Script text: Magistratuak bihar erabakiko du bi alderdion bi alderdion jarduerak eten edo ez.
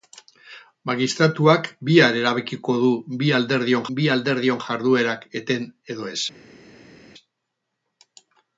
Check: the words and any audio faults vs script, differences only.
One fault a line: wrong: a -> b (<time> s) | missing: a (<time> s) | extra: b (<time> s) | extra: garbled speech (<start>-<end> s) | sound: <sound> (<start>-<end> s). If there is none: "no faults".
no faults